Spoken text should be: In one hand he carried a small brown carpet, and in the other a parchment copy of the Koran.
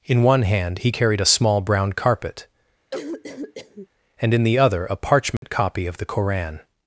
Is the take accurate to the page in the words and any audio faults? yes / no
no